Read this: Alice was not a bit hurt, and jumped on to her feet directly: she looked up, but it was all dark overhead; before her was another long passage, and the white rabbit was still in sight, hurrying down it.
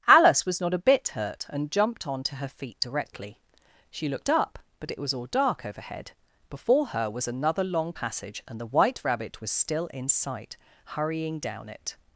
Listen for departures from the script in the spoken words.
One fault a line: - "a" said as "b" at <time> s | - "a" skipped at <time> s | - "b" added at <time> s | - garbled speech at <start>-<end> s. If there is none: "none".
none